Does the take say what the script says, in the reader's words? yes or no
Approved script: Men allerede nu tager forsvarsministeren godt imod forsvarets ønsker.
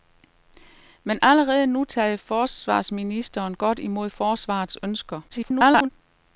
no